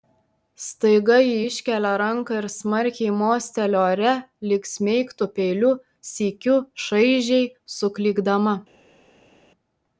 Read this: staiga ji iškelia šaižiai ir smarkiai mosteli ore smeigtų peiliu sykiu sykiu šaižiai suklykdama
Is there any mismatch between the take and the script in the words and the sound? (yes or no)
yes